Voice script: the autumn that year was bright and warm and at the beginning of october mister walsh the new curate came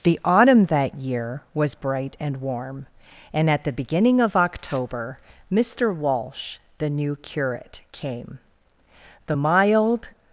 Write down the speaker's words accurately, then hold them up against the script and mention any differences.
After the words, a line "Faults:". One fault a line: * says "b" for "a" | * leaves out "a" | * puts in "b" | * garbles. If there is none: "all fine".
the autumn that year was bright and warm and at the beginning of october mister walsh the new curate came the mild
Faults:
* puts in "the mild"